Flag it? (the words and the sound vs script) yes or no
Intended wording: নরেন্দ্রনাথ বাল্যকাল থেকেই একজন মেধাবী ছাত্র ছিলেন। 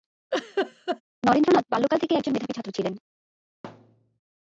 yes